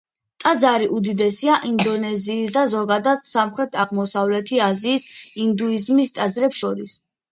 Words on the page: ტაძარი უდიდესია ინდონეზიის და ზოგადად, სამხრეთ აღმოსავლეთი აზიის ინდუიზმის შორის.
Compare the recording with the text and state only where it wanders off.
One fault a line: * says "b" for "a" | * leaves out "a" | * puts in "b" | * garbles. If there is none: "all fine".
* puts in "ტაძრებს"